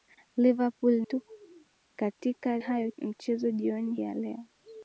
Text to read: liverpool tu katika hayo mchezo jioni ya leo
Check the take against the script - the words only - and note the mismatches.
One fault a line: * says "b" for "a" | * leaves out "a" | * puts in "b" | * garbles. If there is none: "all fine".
all fine